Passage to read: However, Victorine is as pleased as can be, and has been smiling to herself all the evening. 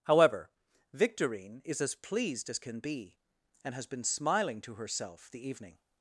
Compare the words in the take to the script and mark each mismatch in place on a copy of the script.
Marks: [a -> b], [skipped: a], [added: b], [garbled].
However, Victorine is as pleased as can be, and has been smiling to herself [skipped: all] the evening.